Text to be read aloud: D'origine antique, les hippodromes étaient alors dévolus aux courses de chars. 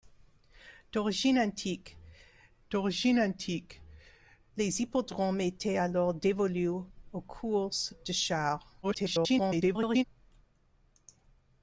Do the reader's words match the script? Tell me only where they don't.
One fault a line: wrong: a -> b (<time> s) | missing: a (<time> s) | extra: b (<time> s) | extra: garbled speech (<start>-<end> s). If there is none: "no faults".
extra: d'origine antique (2.7 s)
extra: garbled speech (8.8-10.0 s)